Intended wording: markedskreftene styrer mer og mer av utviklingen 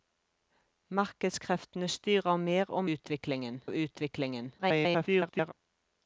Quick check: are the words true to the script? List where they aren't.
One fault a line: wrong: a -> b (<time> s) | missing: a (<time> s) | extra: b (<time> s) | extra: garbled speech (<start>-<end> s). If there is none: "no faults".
wrong: mer -> utviklingen (2.9 s)
extra: garbled speech (4.6-5.5 s)